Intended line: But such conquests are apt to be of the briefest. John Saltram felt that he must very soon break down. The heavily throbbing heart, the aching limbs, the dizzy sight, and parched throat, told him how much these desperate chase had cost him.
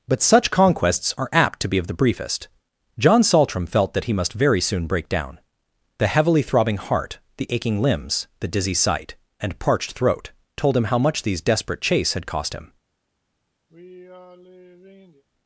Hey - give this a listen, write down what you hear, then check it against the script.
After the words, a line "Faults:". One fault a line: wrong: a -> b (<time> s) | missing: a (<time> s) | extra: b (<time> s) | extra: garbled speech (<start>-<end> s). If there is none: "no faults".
But such conquests are apt to be of the briefest. John Saltram felt that he must very soon break down. The heavily throbbing heart, the aching limbs, the dizzy sight, and parched throat, told him how much these desperate chase had cost him.
Faults:
no faults